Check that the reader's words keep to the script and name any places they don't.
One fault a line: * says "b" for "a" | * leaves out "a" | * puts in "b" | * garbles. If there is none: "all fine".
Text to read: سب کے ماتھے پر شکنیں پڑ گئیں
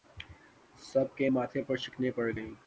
all fine